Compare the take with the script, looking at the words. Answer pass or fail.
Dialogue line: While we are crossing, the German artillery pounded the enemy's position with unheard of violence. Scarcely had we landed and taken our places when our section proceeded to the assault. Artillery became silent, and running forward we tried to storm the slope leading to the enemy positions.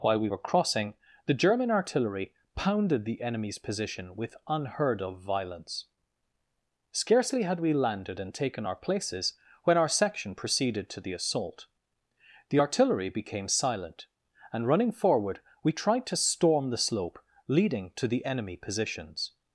fail